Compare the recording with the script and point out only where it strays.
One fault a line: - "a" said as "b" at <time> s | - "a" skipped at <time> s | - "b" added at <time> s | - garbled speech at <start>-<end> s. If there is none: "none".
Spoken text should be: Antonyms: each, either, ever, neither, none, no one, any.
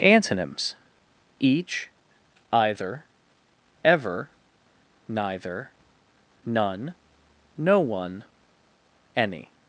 none